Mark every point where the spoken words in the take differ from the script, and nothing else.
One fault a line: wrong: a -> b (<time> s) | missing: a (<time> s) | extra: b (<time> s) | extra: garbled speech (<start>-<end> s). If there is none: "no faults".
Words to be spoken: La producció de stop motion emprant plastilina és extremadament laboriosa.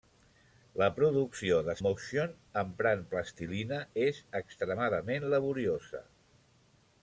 missing: stop (1.8 s)